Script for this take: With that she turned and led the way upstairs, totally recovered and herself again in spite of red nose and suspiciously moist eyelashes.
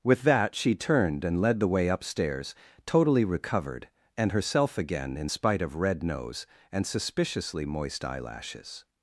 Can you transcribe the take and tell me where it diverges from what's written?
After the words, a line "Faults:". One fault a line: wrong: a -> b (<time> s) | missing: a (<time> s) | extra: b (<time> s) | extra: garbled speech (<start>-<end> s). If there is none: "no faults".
With that she turned and led the way upstairs, totally recovered and herself again in spite of red nose and suspiciously moist eyelashes.
Faults:
no faults